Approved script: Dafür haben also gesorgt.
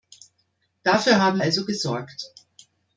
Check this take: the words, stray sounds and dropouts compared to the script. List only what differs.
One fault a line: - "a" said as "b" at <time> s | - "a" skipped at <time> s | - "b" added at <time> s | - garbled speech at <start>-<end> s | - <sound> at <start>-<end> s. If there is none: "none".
none